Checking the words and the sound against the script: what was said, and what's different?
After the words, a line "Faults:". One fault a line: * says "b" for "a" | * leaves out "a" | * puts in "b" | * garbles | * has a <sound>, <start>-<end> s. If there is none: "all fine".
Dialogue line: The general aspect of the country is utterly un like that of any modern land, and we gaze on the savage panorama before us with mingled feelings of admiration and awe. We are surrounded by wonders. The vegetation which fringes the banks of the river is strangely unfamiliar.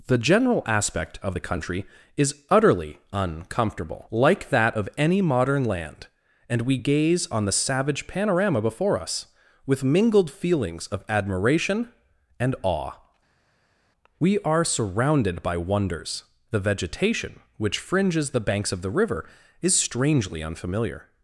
The general aspect of the country is utterly uncomfortable like that of any modern land, and we gaze on the savage panorama before us with mingled feelings of admiration and awe. We are surrounded by wonders. The vegetation which fringes the banks of the river is strangely unfamiliar.
Faults:
* says "uncomfortable" for "un"